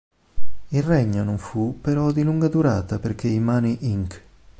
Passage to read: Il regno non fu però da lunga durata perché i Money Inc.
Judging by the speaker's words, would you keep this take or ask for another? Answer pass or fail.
fail